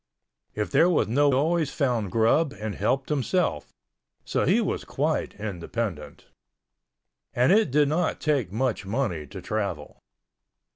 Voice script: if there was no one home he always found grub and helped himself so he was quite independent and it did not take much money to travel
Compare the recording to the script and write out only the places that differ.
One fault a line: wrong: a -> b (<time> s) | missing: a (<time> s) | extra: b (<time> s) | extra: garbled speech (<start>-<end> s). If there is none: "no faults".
missing: one home he (1.3 s)